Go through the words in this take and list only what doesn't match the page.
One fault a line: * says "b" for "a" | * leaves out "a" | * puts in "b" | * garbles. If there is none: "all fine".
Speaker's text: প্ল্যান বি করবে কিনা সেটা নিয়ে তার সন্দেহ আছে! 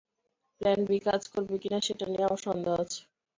* puts in "কাজ"
* says "আমার" for "তার"